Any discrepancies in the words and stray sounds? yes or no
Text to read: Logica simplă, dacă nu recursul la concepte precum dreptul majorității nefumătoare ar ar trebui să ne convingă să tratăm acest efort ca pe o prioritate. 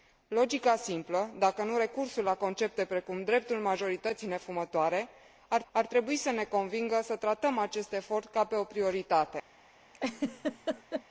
yes